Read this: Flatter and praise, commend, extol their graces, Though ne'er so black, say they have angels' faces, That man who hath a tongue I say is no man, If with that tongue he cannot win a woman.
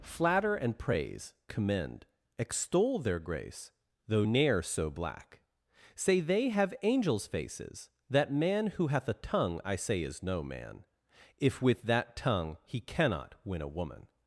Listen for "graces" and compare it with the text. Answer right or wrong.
wrong